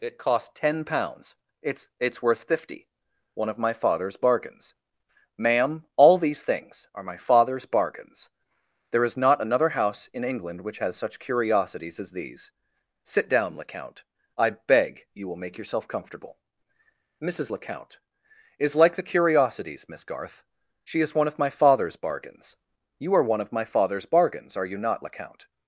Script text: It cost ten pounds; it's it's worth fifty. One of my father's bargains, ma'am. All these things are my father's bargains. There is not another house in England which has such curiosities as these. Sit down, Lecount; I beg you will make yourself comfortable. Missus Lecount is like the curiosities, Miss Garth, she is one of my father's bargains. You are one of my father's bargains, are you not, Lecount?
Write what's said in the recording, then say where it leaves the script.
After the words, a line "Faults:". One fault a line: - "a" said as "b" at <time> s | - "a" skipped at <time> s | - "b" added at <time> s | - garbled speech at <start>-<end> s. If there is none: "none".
It cost ten pounds; it's it's worth fifty. One of my father's bargains, ma'am. All these things are my father's bargains. There is not another house in England which has such curiosities as these. Sit down, Lecount; I beg you will make yourself comfortable. Missus Lecount is like the curiosities, Miss Garth, she is one of my father's bargains. You are one of my father's bargains, are you not, Lecount?
Faults:
none